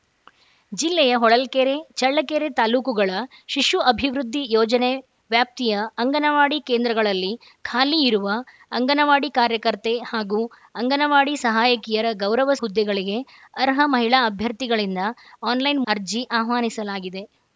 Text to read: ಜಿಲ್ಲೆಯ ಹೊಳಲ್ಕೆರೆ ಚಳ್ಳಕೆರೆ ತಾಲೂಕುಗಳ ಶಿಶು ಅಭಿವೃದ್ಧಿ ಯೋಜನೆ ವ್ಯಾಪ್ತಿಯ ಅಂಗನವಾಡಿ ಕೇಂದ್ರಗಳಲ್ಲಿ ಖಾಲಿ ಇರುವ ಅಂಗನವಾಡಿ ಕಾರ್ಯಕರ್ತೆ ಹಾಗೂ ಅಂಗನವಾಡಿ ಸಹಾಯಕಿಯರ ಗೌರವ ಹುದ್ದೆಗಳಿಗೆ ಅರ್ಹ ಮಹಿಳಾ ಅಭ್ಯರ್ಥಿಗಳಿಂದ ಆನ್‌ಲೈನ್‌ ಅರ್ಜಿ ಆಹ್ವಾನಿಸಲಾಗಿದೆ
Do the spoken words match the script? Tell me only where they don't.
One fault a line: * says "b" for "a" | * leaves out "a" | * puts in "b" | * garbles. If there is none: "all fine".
all fine